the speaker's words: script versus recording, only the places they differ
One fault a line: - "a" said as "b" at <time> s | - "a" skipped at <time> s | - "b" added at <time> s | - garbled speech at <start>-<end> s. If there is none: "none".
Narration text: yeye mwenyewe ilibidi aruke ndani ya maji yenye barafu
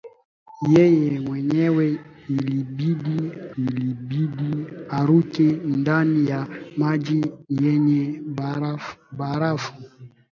- "ilibidi" added at 3.6 s